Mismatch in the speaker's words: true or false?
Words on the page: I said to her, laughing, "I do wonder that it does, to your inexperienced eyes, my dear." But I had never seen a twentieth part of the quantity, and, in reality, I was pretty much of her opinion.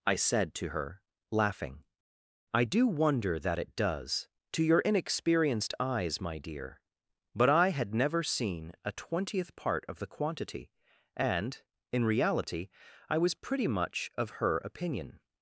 false